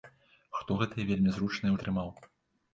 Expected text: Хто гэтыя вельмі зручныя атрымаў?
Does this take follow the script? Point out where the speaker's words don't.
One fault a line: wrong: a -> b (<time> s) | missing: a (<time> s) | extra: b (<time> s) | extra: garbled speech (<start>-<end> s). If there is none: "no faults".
no faults